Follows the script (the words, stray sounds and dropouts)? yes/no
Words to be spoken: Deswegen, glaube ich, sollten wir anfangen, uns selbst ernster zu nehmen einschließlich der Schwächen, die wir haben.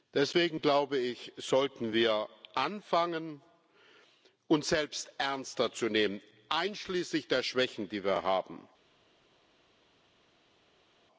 yes